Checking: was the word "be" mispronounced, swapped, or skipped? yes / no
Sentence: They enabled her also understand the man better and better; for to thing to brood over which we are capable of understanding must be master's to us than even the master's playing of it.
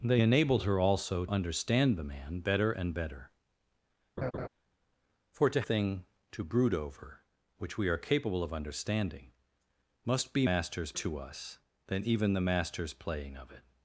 no